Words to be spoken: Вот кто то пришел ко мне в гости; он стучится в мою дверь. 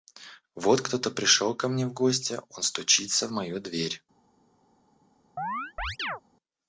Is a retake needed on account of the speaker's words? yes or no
no